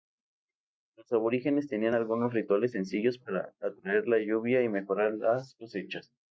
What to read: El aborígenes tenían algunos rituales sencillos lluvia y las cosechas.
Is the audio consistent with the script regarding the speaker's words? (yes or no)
no